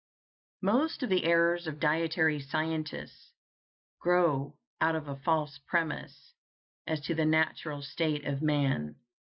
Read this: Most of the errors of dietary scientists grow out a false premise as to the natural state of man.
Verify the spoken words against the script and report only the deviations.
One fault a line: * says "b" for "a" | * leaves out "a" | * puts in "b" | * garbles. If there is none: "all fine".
* puts in "of"